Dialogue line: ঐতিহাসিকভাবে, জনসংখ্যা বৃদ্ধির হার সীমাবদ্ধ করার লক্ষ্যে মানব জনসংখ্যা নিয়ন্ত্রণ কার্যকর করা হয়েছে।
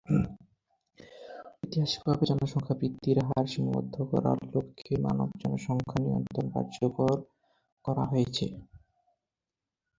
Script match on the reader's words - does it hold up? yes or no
yes